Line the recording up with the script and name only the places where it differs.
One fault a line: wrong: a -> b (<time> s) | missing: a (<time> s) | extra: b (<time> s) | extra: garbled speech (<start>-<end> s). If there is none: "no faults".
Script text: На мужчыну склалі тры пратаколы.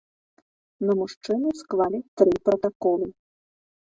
no faults